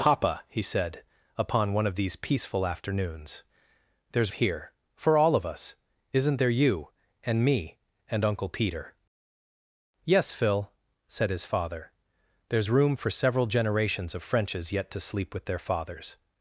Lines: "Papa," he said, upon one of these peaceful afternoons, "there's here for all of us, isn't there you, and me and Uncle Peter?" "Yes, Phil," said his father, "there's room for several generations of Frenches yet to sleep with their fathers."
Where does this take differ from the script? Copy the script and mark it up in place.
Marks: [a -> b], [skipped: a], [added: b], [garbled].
"Papa," he said, upon one of these peaceful afternoons, "there's here for all of us, isn't there you, and me and Uncle Peter?" "Yes, Phil," said his father, "there's room for several generations of Frenches yet to sleep with their fathers."